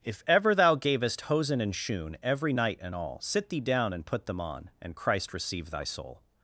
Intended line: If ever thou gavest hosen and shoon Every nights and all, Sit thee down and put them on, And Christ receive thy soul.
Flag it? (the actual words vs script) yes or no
yes